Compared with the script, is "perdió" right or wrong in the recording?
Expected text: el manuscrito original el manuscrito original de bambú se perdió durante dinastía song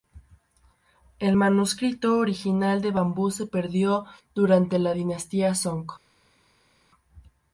right